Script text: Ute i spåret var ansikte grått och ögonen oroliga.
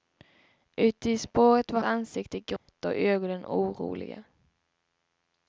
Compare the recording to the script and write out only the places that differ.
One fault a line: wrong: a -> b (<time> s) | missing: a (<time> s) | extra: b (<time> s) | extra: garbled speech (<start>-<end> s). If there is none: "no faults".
no faults